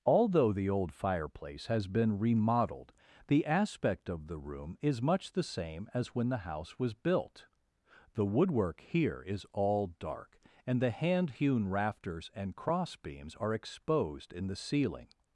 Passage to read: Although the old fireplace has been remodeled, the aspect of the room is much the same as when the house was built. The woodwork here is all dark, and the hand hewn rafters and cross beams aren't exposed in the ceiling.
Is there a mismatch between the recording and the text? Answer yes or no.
yes